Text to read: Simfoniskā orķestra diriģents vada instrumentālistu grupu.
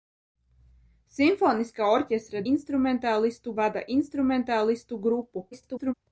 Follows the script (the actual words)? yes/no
no